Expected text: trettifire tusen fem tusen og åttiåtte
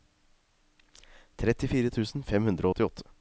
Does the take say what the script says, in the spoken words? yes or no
no